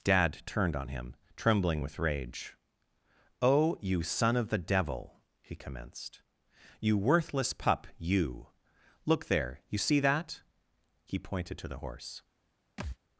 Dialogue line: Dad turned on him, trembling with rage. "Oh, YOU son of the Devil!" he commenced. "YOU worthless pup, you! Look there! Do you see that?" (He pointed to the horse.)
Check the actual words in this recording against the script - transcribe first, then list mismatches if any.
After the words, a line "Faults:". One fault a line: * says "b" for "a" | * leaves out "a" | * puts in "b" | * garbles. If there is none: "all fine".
Dad turned on him, trembling with rage. "Oh, YOU son of the Devil!" he commenced. "YOU worthless pup, you! Look there! you see that?" (He pointed to the horse.)
Faults:
* leaves out "Do"